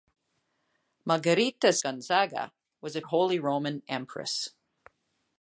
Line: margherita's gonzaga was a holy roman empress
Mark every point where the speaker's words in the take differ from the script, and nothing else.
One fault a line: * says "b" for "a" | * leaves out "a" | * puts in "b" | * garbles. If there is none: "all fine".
all fine